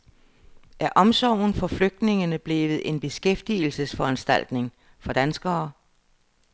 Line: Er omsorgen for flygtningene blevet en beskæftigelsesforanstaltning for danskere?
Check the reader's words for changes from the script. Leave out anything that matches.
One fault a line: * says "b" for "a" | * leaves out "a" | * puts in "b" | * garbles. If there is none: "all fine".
all fine